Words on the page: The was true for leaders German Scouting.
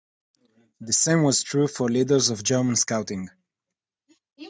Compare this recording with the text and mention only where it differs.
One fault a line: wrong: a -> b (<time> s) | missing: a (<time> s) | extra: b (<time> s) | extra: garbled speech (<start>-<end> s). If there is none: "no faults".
extra: same (0.9 s)
extra: of (2.3 s)